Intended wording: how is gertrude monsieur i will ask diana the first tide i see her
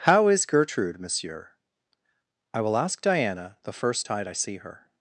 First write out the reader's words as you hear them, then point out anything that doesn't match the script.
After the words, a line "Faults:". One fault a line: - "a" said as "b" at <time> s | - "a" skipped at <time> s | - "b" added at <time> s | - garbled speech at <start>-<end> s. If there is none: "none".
how is gertrude monsieur i will ask diana the first tide i see her
Faults:
none